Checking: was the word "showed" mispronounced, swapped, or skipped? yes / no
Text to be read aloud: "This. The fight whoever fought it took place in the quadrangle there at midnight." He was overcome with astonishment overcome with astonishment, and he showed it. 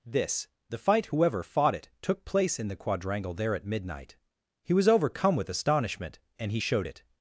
no